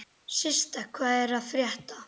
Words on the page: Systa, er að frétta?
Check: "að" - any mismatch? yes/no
no